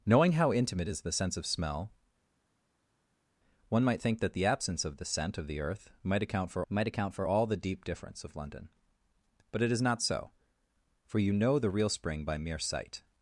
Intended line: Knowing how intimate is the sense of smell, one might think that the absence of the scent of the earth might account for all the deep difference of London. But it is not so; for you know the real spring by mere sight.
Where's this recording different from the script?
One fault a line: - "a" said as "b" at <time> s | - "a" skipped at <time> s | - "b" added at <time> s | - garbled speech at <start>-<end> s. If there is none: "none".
- "might account for" added at 6.7 s